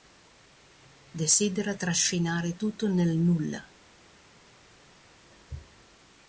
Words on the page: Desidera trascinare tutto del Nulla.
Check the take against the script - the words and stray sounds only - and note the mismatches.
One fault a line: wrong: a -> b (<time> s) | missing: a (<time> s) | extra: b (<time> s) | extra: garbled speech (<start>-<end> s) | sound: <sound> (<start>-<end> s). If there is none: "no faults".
wrong: del -> nel (2.9 s)